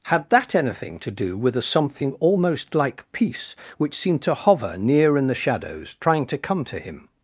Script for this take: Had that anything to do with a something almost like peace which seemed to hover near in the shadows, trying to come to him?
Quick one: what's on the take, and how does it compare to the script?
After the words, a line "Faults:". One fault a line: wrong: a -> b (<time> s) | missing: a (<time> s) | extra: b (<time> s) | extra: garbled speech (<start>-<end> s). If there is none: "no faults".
Had that anything to do with a something almost like peace which seemed to hover near in the shadows, trying to come to him?
Faults:
no faults